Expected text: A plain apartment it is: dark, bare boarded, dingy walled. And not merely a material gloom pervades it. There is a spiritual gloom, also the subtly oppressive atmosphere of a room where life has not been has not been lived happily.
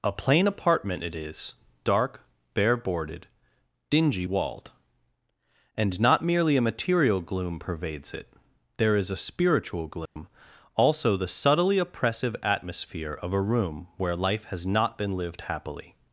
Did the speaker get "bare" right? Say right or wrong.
right